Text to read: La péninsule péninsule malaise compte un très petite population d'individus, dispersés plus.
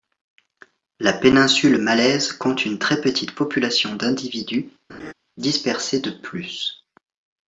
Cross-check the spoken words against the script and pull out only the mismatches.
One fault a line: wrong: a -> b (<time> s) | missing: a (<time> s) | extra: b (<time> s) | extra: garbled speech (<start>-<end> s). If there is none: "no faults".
missing: péninsule (1.8 s)
wrong: un -> une (2.6 s)
extra: de (6.0 s)